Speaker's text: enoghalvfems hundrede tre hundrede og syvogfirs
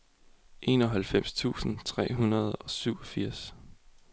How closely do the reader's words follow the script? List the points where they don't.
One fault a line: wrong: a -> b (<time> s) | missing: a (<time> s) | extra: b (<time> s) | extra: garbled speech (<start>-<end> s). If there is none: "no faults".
wrong: hundrede -> tusind (1.3 s)